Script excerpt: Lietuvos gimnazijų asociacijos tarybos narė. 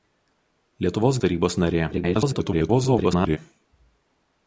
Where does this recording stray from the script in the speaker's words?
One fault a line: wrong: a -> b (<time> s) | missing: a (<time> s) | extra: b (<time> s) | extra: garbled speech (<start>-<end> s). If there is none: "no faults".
missing: gimnazijų asociacijos (1.2 s)
extra: garbled speech (1.9-3.4 s)